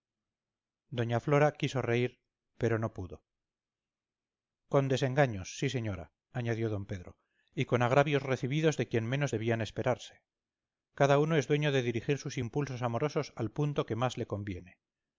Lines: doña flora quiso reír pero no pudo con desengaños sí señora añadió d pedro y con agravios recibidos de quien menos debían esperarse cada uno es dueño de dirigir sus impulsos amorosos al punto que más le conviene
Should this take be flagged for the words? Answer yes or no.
no